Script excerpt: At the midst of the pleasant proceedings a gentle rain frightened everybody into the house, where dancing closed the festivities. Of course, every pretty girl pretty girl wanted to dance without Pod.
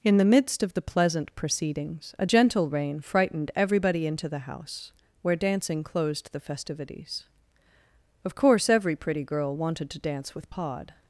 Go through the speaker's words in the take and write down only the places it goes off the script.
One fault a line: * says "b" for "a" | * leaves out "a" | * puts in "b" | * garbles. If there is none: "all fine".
* says "In" for "At"
* leaves out "pretty girl"
* says "with" for "without"